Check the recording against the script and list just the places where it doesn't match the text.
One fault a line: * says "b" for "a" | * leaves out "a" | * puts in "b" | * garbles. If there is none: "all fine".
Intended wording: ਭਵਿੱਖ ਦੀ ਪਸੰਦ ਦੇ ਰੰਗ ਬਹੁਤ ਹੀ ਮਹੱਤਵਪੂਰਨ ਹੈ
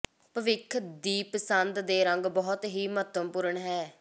all fine